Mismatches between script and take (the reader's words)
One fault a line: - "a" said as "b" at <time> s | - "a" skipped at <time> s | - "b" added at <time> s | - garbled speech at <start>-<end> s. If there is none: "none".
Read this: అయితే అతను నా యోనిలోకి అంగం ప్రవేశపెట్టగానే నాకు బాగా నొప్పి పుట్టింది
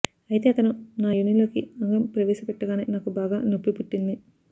none